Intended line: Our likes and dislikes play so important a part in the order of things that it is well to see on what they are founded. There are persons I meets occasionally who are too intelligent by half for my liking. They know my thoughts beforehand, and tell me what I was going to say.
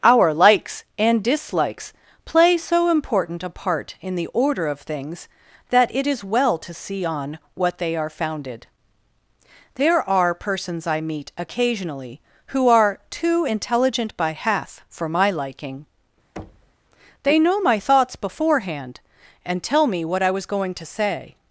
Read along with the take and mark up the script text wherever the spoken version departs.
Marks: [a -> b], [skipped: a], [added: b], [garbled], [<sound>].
Our likes and dislikes play so important a part in the order of things that it is well to see on what they are founded. There are persons I [meets -> meet] occasionally who are too intelligent by half for my liking. [thud] They know my thoughts beforehand, and tell me what I was going to say.